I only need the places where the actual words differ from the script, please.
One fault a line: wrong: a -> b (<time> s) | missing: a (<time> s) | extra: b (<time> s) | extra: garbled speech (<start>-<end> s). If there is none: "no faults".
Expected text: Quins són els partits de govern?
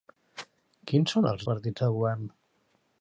no faults